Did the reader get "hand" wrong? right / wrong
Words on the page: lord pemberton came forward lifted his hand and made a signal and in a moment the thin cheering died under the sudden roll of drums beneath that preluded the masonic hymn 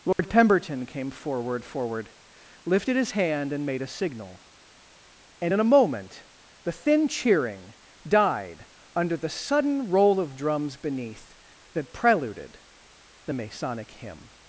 right